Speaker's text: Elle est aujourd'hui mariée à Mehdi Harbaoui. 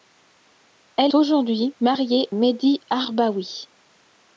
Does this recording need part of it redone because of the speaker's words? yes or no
yes